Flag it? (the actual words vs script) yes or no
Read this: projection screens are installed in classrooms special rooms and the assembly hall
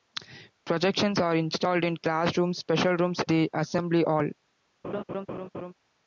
yes